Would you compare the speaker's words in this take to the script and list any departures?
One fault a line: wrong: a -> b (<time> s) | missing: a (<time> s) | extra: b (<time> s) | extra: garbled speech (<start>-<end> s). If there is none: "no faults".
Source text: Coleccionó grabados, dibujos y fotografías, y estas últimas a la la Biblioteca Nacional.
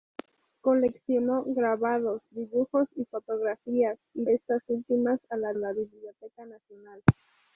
no faults